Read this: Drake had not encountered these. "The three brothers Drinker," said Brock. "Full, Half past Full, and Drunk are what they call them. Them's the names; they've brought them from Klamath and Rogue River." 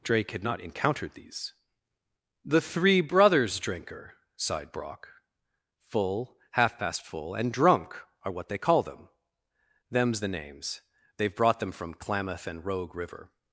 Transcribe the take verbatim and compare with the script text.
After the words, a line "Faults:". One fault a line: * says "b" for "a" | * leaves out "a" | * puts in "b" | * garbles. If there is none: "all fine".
Drake had not encountered these. "The three brothers Drinker," sighed Brock. "Full, Half past Full, and Drunk are what they call them. Them's the names; they've brought them from Klamath and Rogue River."
Faults:
* says "sighed" for "said"